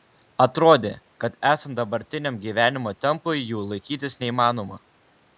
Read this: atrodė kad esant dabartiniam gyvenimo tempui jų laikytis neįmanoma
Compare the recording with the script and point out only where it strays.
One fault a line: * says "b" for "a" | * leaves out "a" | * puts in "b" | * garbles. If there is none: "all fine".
all fine